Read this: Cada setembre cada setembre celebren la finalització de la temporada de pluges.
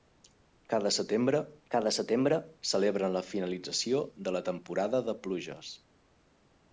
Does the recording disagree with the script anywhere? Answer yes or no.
no